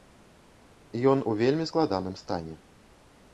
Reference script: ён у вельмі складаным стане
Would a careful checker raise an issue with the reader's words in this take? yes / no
no